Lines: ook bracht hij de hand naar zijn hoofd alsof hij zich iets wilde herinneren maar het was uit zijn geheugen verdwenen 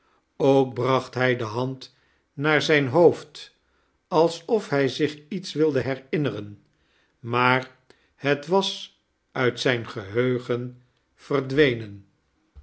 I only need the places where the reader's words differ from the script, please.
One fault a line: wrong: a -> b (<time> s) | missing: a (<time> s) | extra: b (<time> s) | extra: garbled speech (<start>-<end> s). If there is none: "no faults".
no faults